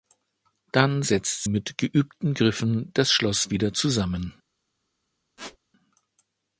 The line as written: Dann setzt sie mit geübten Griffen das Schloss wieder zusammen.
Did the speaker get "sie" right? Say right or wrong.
wrong